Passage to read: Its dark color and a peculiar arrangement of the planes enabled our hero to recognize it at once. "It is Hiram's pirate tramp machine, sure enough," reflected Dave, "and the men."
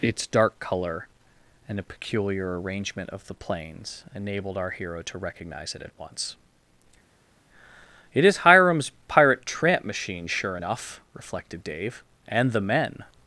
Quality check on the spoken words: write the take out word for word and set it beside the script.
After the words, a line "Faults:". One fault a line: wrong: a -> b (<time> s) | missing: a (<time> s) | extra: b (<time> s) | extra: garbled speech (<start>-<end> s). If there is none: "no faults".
Its dark color and a peculiar arrangement of the planes enabled our hero to recognize it at once. "It is Hiram's pirate tramp machine, sure enough," reflected Dave, "and the men."
Faults:
no faults